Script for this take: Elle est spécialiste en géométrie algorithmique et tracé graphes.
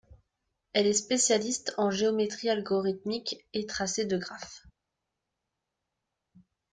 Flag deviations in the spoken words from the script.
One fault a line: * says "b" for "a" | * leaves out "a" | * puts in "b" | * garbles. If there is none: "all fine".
* puts in "de"